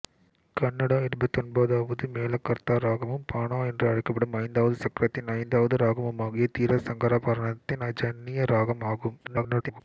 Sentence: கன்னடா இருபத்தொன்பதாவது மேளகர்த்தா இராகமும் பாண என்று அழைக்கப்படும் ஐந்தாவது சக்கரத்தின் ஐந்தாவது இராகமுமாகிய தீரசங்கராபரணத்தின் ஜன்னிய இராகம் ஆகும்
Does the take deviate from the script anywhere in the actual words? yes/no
yes